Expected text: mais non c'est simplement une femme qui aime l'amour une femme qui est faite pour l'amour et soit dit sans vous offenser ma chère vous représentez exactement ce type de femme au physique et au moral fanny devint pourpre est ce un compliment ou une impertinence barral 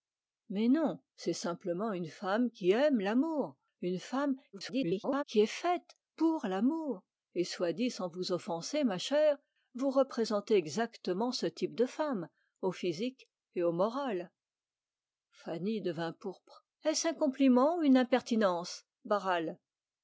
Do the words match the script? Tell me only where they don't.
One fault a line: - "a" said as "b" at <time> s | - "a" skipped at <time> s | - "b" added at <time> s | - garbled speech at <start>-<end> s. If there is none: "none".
- garbled speech at 4.5-5.2 s